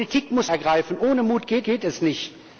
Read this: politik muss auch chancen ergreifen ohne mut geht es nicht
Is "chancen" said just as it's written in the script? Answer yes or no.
no